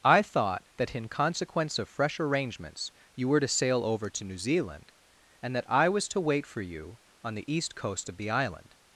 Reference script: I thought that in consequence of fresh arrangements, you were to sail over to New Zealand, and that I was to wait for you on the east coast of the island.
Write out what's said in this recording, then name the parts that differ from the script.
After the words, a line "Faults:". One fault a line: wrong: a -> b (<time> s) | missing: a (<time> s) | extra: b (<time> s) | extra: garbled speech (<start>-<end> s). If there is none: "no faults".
I thought that in consequence of fresh arrangements, you were to sail over to New Zealand, and that I was to wait for you on the east coast of the island.
Faults:
no faults